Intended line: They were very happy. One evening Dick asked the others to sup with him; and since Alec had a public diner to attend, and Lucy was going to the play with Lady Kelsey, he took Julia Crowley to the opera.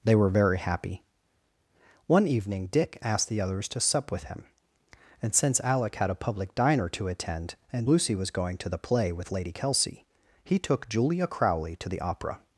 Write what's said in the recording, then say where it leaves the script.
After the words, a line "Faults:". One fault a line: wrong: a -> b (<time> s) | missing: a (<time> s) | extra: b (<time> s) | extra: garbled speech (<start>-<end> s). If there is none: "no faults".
They were very happy. One evening Dick asked the others to sup with him; and since Alec had a public diner to attend, and Lucy was going to the play with Lady Kelsey, he took Julia Crowley to the opera.
Faults:
no faults